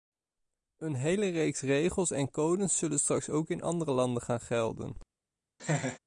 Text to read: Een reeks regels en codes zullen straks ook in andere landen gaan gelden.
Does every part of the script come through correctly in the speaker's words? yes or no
no